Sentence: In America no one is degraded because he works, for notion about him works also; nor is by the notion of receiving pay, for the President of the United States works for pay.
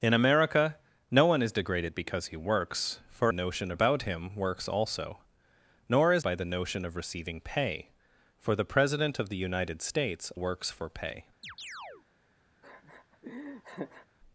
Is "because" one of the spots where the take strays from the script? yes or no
no